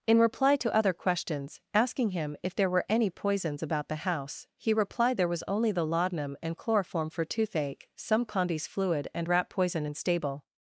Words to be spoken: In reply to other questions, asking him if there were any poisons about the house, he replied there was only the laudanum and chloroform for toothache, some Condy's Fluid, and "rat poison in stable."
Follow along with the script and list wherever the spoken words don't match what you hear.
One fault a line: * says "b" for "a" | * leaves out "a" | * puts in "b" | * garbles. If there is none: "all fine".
all fine